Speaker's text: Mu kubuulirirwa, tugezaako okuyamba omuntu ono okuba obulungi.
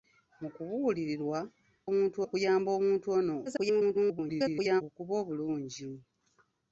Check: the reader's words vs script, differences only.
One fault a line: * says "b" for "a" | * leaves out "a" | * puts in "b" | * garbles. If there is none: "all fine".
* says "omuntu" for "tugezaako"
* garbles